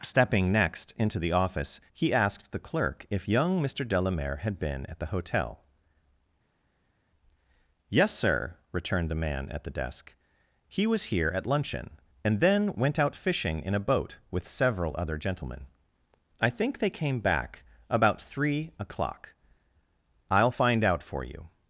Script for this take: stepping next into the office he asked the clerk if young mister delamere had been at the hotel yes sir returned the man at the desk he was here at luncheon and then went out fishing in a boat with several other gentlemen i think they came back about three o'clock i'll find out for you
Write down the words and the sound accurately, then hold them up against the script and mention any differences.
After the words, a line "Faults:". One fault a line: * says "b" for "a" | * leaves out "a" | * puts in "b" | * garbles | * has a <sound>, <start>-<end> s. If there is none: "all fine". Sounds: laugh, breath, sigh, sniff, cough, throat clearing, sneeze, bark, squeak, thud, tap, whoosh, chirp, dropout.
stepping next into the office he asked the clerk if young mister delamere had been at the hotel yes sir returned the man at the desk he was here at luncheon and then went out fishing in a boat with several other gentlemen i think they came back about three o'clock i'll find out for you
Faults:
all fine